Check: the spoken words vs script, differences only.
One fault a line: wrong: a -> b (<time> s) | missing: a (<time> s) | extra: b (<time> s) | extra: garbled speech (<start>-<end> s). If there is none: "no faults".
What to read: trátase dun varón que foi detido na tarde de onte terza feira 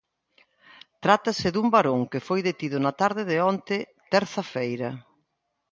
no faults